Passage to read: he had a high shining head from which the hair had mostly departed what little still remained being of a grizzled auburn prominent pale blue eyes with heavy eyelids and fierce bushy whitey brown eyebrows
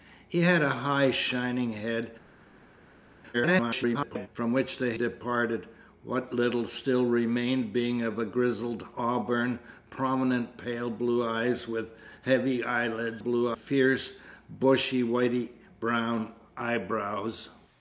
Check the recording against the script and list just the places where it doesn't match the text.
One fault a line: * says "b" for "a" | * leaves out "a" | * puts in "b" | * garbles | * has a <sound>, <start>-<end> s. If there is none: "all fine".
* garbles
* leaves out "hair had mostly"
* says "blue" for "and"